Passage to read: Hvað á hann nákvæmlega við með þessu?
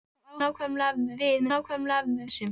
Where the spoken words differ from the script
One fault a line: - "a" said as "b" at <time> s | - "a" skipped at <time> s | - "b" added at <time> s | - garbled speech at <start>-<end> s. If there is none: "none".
- "hann" skipped at 0.4 s
- "með" said as "nákvæmlega" at 1.5 s